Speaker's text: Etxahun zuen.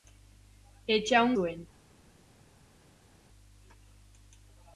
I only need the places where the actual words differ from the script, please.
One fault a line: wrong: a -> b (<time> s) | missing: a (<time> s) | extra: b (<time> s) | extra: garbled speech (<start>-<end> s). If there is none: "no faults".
no faults